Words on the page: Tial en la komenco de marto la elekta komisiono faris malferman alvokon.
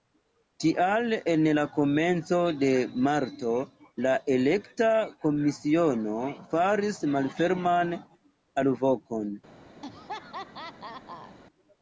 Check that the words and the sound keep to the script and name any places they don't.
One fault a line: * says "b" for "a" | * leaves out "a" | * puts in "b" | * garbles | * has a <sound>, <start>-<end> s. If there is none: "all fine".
* has a laugh, 9.8-11.4 s